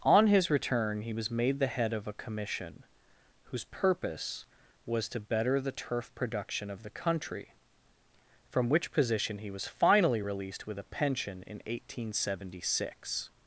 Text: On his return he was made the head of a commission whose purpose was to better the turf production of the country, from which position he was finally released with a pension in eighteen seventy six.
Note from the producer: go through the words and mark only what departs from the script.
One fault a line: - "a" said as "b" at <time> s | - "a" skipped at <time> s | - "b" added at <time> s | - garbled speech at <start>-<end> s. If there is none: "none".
none